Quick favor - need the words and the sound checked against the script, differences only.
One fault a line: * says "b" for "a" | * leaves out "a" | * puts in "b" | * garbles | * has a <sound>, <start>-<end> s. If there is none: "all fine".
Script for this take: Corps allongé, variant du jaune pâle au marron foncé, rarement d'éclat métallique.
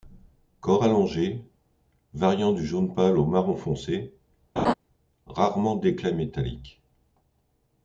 * has a laugh, 4.6-4.7 s